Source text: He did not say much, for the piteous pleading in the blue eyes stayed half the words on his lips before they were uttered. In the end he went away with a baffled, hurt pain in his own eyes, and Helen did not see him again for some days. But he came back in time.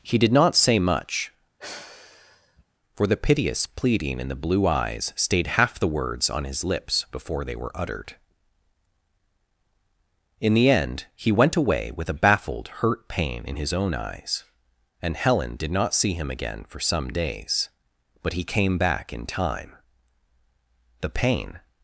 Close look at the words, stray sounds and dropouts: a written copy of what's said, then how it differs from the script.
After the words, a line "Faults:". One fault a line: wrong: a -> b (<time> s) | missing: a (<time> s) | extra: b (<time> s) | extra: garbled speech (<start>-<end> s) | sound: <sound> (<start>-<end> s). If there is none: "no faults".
He did not say much, for the piteous pleading in the blue eyes stayed half the words on his lips before they were uttered. In the end he went away with a baffled, hurt pain in his own eyes, and Helen did not see him again for some days. But he came back in time. The pain
Faults:
sound: sigh (1.6-2.6 s)
extra: The pain (21.0 s)